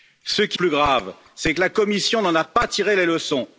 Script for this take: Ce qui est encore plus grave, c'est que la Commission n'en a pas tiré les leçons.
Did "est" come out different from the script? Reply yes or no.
yes